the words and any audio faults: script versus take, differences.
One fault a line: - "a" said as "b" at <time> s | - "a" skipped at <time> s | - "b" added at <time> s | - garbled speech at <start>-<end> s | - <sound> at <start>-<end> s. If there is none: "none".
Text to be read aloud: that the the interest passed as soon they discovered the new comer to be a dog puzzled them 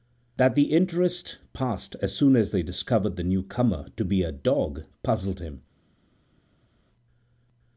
- "the" skipped at 0.7 s
- "as" added at 2.4 s
- "them" said as "him" at 5.4 s